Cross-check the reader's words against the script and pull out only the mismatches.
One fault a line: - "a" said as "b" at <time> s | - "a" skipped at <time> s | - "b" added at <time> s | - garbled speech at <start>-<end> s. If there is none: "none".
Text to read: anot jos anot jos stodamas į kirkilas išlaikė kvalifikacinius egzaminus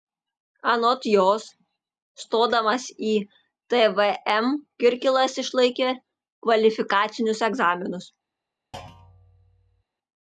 - "anot jos" skipped at 1.4 s
- "tvm" added at 3.8 s